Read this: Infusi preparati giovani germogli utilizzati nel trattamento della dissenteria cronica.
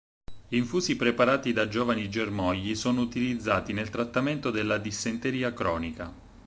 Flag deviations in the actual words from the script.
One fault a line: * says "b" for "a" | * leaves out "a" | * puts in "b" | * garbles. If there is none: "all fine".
* puts in "da"
* puts in "sono"